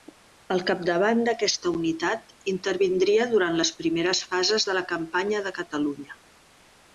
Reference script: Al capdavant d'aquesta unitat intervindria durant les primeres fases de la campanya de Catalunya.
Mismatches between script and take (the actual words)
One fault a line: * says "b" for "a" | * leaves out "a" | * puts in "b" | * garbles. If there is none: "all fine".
all fine